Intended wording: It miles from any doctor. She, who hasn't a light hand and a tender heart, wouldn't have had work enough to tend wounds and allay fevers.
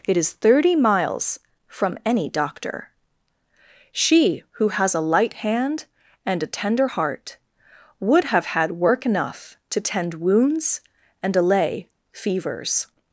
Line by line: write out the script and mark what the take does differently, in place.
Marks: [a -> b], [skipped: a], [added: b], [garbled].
It [added: is thirty] miles from any doctor. She, who [hasn't -> has] a light hand and a tender heart, [wouldn't -> would] have had work enough to tend wounds and allay fevers.